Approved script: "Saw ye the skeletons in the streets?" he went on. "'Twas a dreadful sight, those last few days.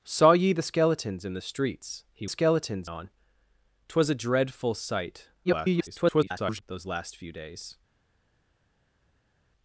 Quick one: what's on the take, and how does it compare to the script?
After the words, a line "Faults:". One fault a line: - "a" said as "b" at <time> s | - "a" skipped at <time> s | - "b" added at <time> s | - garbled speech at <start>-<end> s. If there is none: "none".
"Saw ye the skeletons in the streets?" he skeletons on. "'Twas a dreadful sight, [garbled] those last few days.
Faults:
- "went" said as "skeletons" at 2.3 s
- garbled speech at 5.4-6.6 s